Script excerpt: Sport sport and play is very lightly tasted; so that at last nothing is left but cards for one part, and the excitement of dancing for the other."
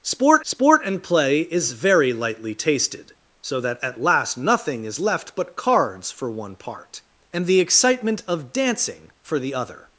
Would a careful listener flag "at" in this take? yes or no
no